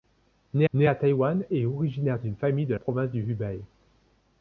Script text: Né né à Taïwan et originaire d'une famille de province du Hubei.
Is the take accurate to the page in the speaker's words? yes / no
yes